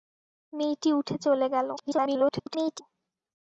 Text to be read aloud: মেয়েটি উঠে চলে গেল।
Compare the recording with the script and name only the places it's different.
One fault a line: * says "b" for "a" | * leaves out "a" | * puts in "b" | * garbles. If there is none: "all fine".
* garbles